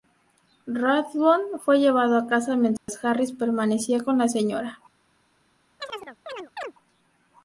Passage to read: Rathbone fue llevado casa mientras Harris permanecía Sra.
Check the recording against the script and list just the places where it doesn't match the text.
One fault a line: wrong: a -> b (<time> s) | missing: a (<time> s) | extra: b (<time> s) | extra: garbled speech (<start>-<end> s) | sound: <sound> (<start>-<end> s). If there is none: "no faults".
extra: a (2.2 s)
sound: dropout (2.8-2.9 s)
extra: con la (4.0 s)
sound: chirp (5.8-6.7 s)